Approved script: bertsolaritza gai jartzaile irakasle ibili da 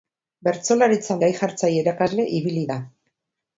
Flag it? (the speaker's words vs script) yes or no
no